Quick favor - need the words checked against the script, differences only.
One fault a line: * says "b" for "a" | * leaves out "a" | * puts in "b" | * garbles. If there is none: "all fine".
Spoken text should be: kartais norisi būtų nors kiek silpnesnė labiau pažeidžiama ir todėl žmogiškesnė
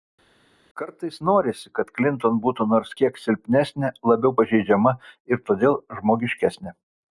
* puts in "kad klinton"